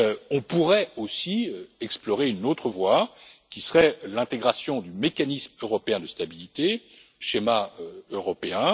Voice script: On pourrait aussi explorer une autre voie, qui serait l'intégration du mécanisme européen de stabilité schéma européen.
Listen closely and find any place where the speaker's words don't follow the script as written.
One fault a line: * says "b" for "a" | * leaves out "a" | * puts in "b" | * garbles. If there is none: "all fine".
all fine